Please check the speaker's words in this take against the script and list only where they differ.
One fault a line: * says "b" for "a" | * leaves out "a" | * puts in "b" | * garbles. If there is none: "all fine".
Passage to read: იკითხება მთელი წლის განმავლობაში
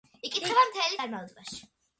* leaves out "წლის"